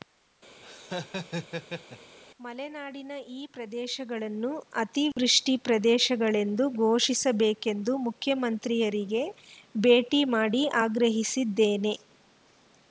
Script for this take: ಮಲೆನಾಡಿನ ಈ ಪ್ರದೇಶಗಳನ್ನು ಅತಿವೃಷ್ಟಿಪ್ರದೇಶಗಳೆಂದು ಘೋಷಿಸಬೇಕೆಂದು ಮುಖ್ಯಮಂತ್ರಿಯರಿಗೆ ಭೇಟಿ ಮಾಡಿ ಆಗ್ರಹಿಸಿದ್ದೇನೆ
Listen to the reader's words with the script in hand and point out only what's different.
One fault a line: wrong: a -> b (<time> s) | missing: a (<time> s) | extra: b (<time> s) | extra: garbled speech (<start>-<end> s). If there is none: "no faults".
no faults